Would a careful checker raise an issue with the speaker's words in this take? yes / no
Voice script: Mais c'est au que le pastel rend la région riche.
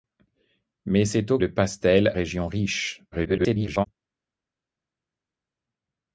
yes